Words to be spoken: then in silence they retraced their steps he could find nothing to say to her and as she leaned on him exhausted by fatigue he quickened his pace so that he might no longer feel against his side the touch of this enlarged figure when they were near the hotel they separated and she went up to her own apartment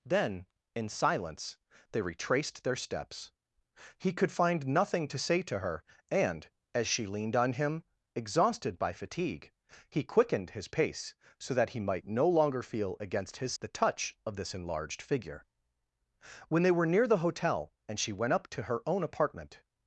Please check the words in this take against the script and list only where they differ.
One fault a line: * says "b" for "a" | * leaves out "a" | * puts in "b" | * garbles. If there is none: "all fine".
* leaves out "side"
* leaves out "they separated"